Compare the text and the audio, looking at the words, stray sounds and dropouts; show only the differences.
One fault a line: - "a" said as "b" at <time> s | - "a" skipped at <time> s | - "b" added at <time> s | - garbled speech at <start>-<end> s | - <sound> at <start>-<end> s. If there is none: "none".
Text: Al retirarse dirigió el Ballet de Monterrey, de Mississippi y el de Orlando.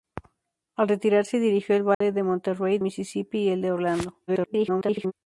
- dropout at 1.9-2.0 s
- "de" skipped at 2.8 s
- garbled speech at 4.3-5.1 s